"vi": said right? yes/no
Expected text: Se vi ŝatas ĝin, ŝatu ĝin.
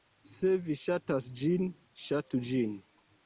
yes